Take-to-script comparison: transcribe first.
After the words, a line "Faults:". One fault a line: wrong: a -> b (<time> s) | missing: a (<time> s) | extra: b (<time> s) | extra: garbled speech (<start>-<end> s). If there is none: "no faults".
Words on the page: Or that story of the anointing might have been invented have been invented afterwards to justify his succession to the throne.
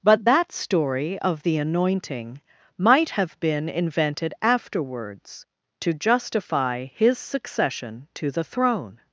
But that story of the anointing might have been invented afterwards to justify his succession to the throne.
Faults:
wrong: Or -> But (0.0 s)
missing: have been invented (4.3 s)